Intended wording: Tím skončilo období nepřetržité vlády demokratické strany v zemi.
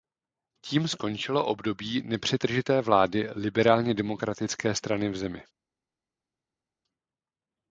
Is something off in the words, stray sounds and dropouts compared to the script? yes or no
yes